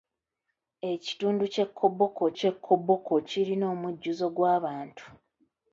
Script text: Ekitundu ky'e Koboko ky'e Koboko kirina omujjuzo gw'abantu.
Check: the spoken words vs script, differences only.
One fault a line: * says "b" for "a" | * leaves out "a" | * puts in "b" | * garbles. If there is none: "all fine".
all fine